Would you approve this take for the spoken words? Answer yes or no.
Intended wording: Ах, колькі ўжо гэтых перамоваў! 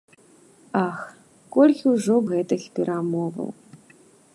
yes